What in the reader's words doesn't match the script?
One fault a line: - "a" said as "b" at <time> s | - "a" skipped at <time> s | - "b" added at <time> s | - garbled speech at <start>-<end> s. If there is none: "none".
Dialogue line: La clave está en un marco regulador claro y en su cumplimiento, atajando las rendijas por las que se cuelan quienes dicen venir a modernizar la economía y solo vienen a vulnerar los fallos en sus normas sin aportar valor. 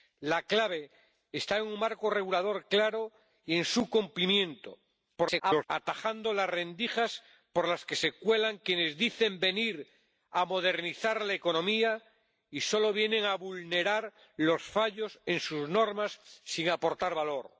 - garbled speech at 5.2-5.7 s